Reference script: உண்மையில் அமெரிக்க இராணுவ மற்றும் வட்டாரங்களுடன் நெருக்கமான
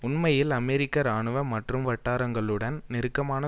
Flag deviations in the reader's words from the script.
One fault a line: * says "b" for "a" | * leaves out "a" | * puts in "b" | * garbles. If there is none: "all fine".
all fine